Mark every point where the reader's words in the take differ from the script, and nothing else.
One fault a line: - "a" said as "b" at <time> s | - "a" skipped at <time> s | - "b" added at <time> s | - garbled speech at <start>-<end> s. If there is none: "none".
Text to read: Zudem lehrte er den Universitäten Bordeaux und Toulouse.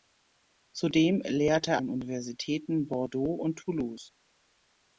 none